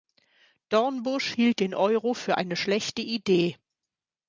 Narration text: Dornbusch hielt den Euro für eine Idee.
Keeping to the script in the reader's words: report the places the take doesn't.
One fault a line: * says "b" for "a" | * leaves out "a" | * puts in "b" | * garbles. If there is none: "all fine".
* puts in "schlechte"